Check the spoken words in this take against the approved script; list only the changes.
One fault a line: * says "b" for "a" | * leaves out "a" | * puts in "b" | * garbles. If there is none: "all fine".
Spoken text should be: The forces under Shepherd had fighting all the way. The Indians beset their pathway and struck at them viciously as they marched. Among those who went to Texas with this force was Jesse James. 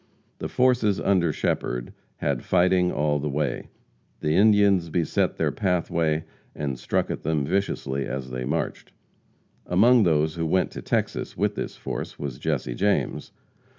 all fine